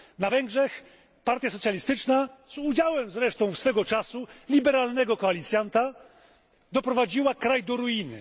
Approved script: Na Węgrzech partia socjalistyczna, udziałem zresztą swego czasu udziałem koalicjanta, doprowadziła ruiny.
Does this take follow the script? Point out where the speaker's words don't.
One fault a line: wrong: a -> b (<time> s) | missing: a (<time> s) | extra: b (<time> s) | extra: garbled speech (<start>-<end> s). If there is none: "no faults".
extra: z (2.5 s)
wrong: udziałem -> liberalnego (4.5 s)
extra: kraj do (7.3 s)